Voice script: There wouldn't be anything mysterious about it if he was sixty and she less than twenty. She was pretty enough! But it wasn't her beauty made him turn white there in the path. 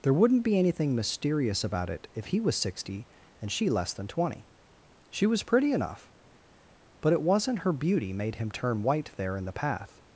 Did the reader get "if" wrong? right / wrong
right